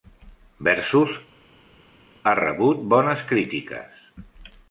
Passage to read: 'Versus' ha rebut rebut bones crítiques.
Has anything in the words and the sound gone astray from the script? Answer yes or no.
yes